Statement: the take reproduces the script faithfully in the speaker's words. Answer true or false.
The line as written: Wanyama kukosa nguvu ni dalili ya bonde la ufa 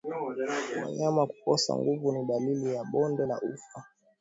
true